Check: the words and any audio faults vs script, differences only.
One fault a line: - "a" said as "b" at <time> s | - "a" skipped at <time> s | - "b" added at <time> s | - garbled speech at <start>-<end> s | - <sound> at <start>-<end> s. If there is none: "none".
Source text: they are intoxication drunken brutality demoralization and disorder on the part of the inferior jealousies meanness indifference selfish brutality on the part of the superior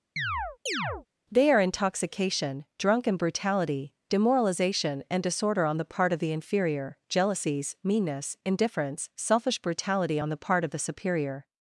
- chirp at 0.2-1.1 s